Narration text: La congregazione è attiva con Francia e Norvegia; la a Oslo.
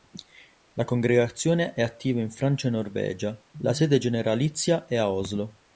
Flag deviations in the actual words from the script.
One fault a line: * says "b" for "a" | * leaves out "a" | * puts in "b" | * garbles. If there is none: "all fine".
* says "in" for "con"
* puts in "sede generalizia è"